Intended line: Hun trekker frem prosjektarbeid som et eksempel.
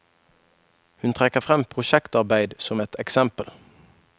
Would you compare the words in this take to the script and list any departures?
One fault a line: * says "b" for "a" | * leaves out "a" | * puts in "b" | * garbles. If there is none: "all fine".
all fine